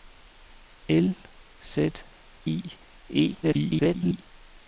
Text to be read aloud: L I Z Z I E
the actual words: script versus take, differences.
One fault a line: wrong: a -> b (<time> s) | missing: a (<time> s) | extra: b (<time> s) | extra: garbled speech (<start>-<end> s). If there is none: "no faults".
missing: I Z (1.1 s)
extra: garbled speech (3.4-4.2 s)